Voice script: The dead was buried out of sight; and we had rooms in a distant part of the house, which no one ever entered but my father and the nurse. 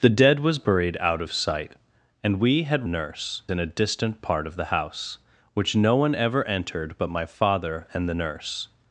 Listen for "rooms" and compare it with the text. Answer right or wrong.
wrong